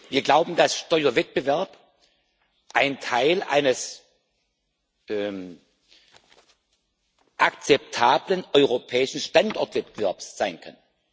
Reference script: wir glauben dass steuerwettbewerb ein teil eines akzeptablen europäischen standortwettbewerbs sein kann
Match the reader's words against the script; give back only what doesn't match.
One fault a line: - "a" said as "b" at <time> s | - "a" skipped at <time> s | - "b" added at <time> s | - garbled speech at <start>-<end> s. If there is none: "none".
none